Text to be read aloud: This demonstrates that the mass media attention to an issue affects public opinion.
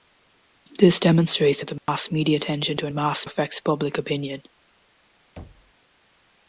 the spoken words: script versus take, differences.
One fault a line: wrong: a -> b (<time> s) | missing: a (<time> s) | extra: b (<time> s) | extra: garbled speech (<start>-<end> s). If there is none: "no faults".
wrong: issue -> mass (2.9 s)